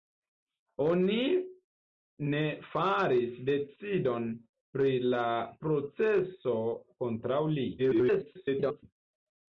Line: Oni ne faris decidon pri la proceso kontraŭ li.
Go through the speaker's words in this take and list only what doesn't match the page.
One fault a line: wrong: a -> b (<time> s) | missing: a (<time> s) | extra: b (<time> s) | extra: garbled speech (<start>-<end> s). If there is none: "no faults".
extra: garbled speech (7.8-8.8 s)